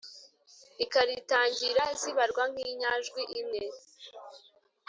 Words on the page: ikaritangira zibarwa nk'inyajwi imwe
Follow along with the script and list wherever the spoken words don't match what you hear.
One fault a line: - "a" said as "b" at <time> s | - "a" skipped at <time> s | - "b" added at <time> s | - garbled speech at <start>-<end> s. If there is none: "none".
none